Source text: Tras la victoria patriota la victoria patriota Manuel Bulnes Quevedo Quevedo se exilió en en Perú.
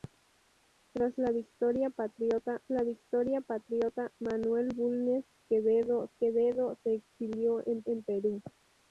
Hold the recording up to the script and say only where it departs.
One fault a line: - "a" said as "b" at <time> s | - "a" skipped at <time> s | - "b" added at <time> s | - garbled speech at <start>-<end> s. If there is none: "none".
none